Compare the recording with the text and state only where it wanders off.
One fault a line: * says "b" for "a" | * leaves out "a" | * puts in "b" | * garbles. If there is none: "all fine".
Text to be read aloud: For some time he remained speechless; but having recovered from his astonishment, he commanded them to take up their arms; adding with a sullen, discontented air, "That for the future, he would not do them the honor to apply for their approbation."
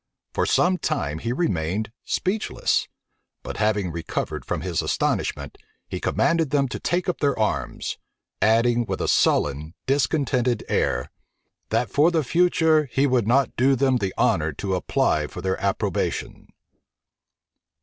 all fine